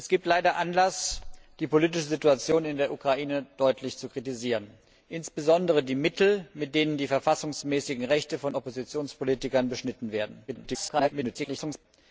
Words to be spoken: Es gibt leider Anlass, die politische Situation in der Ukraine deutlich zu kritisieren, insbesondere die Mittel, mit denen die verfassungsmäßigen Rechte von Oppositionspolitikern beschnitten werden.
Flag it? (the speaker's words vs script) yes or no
yes